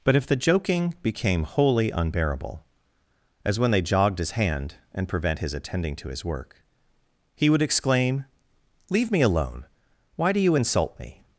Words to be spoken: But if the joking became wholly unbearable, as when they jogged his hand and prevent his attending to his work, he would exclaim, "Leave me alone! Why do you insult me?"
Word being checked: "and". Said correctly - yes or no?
yes